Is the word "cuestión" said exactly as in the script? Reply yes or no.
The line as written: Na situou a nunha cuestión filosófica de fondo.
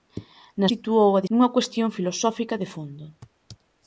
yes